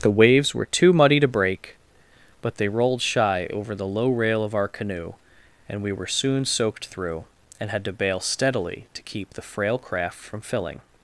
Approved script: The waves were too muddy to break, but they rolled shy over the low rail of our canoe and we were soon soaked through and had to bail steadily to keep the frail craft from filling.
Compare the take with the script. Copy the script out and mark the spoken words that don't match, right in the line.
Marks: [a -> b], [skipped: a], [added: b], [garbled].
The waves were too muddy to break, but they rolled shy over the low rail of our canoe and we were soon soaked through and had to bail steadily to keep the frail craft from filling.